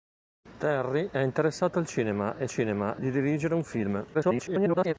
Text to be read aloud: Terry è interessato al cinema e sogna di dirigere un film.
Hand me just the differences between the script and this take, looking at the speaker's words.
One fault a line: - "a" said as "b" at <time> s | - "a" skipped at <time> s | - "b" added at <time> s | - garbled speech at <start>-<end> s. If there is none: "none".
- "sogna" said as "cinema" at 2.5 s
- garbled speech at 4.1-4.9 s